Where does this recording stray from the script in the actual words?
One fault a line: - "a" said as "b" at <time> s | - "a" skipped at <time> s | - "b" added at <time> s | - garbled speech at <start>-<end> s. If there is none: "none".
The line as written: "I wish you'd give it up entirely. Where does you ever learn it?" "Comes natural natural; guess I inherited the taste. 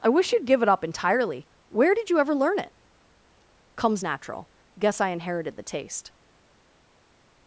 - "does" said as "did" at 1.9 s
- "natural" skipped at 4.5 s